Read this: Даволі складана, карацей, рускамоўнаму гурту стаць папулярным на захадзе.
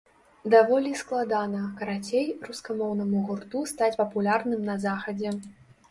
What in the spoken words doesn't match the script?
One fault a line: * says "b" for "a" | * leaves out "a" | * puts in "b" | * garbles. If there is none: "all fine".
all fine